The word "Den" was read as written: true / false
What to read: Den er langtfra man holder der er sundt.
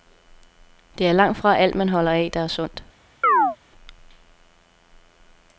false